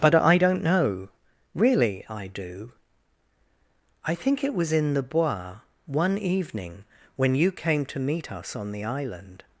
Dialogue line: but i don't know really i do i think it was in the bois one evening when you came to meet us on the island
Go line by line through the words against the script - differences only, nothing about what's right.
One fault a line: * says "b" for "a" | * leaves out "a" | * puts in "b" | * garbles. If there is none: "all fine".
all fine